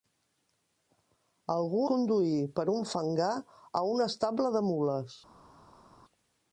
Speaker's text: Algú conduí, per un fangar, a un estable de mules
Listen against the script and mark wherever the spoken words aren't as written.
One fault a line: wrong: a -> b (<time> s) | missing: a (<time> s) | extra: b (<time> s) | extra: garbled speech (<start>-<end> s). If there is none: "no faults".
no faults